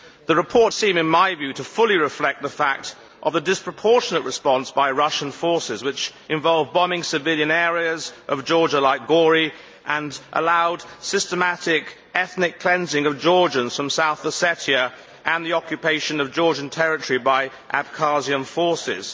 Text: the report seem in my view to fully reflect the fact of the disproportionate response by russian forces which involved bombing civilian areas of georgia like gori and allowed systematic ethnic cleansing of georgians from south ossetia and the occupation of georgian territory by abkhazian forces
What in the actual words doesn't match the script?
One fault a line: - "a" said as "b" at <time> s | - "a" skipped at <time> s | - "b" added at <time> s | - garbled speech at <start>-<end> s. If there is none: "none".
none